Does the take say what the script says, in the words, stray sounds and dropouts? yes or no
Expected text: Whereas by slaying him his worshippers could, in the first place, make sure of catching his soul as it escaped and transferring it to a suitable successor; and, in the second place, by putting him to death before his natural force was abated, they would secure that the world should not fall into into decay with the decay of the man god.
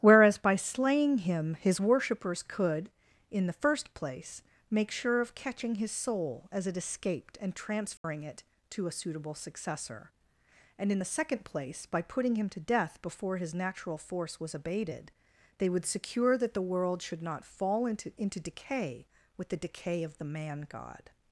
no